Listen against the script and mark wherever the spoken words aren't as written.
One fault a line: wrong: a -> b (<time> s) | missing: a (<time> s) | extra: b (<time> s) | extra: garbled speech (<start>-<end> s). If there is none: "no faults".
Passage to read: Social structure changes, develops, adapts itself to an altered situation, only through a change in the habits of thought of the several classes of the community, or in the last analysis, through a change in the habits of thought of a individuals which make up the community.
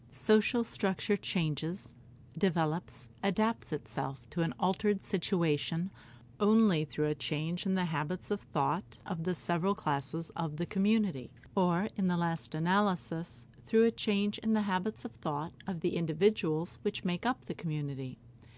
wrong: a -> the (15.8 s)